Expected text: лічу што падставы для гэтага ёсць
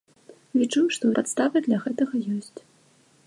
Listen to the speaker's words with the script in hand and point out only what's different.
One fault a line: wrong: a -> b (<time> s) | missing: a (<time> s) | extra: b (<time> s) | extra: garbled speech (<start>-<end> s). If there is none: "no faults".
no faults